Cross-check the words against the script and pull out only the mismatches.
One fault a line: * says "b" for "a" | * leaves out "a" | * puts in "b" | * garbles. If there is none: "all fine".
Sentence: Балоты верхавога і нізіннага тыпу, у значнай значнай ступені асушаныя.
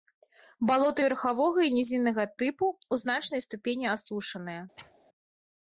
* leaves out "значнай"